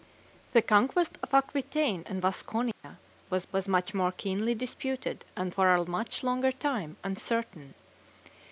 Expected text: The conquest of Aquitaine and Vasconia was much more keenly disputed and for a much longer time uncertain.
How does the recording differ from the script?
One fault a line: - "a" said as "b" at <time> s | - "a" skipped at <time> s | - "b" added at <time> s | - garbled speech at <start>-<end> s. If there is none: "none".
- "was" added at 3.5 s